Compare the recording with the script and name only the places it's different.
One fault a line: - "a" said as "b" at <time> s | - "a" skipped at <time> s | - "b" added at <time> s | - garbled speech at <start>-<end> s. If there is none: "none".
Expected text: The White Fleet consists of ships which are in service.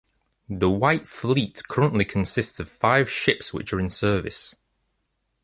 - "currently" added at 1.7 s
- "five" added at 2.7 s